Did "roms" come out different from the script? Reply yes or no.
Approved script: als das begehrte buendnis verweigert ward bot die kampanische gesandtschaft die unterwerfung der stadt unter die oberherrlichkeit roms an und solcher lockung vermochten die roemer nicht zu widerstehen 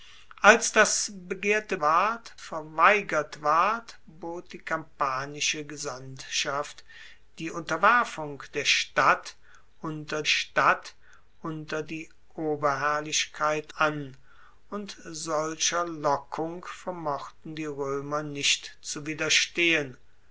yes